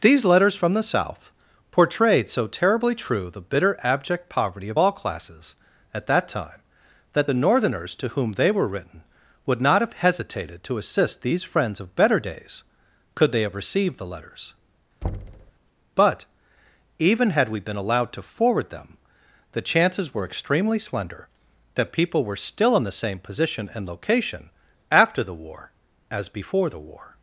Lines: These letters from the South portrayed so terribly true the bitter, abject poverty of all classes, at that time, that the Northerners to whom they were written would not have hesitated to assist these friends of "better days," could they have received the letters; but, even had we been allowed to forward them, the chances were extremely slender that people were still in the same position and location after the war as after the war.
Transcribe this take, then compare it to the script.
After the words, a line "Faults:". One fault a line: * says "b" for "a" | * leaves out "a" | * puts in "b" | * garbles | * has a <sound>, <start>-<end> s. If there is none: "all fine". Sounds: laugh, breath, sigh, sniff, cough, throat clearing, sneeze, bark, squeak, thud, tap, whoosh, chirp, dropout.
These letters from the South portrayed so terribly true the bitter, abject poverty of all classes, at that time, that the Northerners to whom they were written would not have hesitated to assist these friends of "better days," could they have received the letters; but, even had we been allowed to forward them, the chances were extremely slender that people were still in the same position and location after the war as before the war.
Faults:
* has a thud, 15.0-15.5 s
* says "before" for "after"